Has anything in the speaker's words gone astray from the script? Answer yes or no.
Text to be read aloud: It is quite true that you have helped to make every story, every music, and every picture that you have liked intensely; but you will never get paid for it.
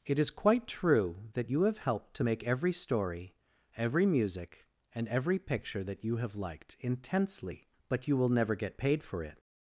no